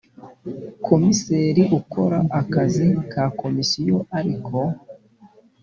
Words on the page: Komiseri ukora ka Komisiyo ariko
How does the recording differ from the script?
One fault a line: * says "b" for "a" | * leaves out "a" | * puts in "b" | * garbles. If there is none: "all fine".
* puts in "akazi"